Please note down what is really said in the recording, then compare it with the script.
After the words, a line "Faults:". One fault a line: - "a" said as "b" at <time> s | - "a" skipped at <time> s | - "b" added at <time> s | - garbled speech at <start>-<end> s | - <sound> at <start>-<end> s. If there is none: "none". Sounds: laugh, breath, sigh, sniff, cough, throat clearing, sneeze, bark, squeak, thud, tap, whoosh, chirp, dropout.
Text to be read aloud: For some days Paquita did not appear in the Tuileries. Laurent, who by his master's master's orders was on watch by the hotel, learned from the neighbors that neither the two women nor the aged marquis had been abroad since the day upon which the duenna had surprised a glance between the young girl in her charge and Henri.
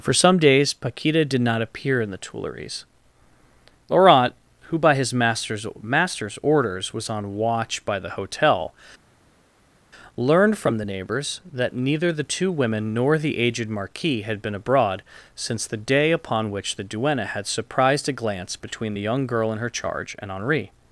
For some days Paquita did not appear in the Tuileries. Laurent, who by his master's master's orders was on watch by the hotel, learned from the neighbors that neither the two women nor the aged marquis had been abroad since the day upon which the duenna had surprised a glance between the young girl in her charge and Henri.
Faults:
none